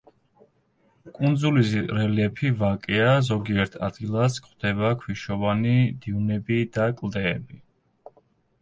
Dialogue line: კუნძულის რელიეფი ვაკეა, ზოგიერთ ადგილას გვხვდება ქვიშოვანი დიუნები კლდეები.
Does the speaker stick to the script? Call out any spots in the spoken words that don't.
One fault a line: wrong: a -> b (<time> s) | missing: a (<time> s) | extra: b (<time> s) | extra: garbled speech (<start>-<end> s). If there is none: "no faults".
extra: და (6.8 s)